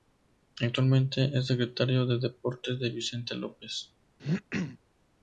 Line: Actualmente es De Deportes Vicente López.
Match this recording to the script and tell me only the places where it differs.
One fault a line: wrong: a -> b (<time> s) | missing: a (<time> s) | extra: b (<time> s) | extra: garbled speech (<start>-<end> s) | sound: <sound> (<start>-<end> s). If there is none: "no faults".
extra: Secretario (1.4 s)
extra: de (2.8 s)
sound: throat clearing (4.2-4.8 s)